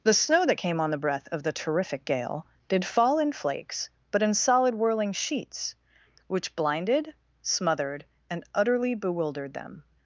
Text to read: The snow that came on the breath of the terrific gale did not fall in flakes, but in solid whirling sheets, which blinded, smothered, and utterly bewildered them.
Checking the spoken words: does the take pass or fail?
fail